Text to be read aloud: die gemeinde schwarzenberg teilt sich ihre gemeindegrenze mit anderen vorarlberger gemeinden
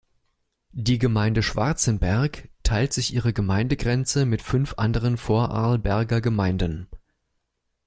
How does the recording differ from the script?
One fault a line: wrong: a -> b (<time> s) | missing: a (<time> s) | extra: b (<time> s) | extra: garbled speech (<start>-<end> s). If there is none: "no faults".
extra: fünf (4.4 s)